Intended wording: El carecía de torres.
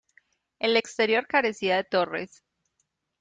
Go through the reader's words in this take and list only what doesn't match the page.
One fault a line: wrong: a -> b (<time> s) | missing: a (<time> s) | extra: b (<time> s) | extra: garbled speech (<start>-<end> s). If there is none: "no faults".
extra: exterior (0.7 s)